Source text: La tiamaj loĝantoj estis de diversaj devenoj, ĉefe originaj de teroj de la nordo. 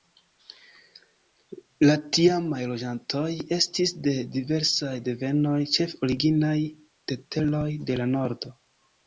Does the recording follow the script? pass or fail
pass